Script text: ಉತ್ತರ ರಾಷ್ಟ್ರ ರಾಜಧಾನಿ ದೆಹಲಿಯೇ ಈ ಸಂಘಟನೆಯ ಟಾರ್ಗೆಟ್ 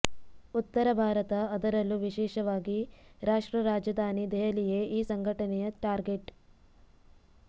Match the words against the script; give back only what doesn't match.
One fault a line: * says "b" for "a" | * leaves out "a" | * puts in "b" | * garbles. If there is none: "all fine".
* puts in "ಭಾರತ ಅದರಲ್ಲೂ ವಿಶೇಷವಾಗಿ"